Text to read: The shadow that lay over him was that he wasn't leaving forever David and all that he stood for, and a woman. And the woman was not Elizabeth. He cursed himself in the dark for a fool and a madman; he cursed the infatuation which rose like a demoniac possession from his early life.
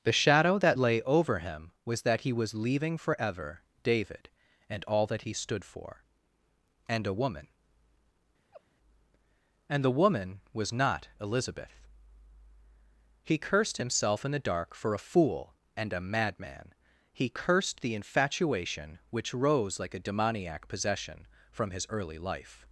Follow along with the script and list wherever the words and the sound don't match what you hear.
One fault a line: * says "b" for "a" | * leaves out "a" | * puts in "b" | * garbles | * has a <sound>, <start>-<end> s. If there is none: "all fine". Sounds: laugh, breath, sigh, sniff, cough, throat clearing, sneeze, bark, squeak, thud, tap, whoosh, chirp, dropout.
* says "was" for "wasn't"
* has a laugh, 8.5-8.6 s